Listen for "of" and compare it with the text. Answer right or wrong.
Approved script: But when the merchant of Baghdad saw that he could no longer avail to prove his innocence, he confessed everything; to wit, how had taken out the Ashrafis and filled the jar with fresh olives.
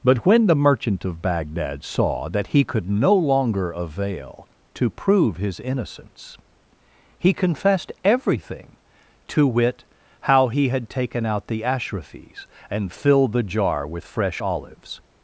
right